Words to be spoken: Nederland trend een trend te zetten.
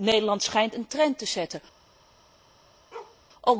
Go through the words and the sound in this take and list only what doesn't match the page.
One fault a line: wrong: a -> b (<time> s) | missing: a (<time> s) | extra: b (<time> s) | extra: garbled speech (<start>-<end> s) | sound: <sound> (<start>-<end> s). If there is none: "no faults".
wrong: trend -> schijnt (0.4 s)
sound: bark (2.9-3.2 s)